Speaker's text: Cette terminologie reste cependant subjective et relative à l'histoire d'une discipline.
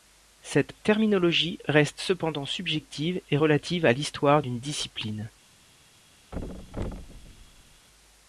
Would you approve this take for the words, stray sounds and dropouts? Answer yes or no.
no